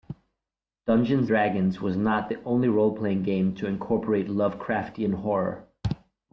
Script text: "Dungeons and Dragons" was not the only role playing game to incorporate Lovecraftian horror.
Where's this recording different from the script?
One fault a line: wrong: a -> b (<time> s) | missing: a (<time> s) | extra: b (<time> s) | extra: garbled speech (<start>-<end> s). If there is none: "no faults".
missing: and (1.3 s)